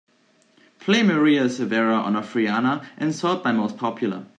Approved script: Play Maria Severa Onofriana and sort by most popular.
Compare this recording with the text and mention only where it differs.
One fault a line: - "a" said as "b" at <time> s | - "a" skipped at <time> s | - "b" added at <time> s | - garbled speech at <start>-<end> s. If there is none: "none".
none